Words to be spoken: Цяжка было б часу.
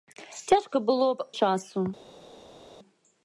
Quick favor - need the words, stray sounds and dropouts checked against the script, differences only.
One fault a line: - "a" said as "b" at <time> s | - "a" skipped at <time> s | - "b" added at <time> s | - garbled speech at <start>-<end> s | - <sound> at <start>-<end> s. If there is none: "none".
none